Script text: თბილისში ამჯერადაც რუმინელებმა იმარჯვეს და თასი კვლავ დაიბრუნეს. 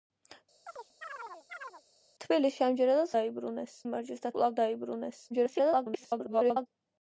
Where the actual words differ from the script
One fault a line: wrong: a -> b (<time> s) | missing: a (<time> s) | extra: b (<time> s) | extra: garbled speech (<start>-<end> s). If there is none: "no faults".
wrong: რუმინელებმა -> დაიბრუნეს (3.2 s)
missing: თასი (4.3 s)
extra: garbled speech (5.3-6.7 s)